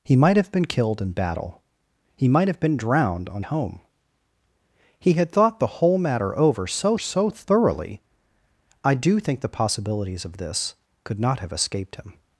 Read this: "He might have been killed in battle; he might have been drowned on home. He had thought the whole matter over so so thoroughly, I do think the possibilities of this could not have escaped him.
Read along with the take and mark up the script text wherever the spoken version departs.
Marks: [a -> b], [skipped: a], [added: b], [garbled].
"He might have been killed in battle; he might have been drowned on home. He had thought the whole matter over so so thoroughly, I do think the possibilities of this could not have escaped him.